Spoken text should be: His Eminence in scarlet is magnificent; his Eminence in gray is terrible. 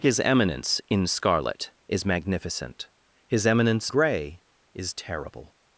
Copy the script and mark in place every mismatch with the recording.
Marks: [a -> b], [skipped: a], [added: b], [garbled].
His Eminence in scarlet is magnificent; his Eminence [skipped: in] gray is terrible.